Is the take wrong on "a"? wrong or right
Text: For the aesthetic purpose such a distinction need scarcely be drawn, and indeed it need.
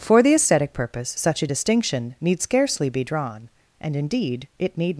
right